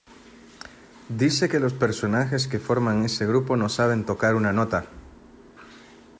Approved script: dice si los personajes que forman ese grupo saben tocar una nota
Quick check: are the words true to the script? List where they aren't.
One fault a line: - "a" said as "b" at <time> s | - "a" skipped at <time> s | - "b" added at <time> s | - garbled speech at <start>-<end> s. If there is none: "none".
- "si" said as "que" at 1.5 s
- "no" added at 3.6 s